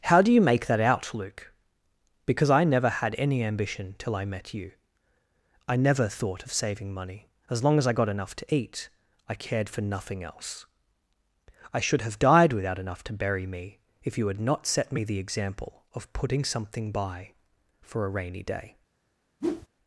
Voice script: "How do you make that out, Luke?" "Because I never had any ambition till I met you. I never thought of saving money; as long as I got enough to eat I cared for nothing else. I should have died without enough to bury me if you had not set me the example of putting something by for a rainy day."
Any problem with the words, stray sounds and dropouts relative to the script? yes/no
yes